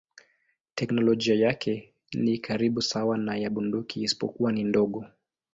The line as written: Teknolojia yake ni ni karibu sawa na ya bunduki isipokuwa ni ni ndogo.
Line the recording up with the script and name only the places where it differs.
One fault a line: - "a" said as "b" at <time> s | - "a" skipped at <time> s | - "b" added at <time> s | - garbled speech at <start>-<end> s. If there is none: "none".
- "ni" skipped at 2.4 s
- "ni" skipped at 4.6 s